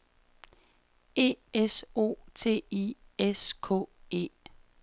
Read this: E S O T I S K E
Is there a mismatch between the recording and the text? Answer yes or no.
no